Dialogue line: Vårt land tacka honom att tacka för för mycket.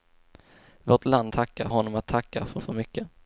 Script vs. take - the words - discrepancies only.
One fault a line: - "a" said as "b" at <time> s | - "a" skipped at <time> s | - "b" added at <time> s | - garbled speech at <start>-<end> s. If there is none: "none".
none